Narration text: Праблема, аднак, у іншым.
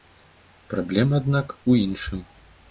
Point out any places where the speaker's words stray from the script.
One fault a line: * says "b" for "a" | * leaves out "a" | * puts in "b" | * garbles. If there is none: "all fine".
all fine